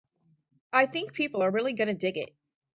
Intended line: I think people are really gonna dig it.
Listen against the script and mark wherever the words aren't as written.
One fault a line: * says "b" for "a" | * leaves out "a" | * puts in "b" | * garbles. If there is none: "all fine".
all fine